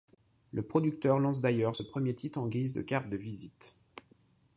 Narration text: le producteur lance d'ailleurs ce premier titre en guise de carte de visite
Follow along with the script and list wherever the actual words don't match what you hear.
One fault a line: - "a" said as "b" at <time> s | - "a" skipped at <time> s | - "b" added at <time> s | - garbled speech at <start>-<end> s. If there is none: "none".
none